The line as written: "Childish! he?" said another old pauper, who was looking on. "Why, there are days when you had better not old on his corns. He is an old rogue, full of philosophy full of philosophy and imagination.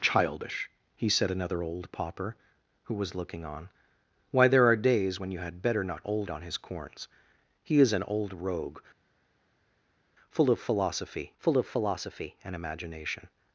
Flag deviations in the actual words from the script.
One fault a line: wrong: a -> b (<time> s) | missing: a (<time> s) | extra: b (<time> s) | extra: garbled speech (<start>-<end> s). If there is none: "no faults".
no faults